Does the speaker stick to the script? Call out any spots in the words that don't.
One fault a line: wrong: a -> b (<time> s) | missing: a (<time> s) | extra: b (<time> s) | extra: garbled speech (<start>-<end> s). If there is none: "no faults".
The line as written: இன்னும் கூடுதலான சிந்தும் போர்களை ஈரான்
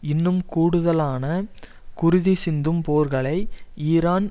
extra: குருதி (1.9 s)